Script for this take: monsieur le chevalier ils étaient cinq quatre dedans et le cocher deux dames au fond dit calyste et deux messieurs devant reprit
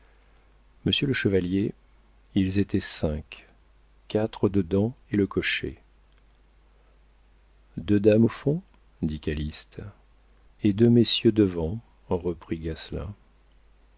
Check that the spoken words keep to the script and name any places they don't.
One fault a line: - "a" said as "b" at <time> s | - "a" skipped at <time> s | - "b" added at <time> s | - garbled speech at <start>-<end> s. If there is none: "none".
none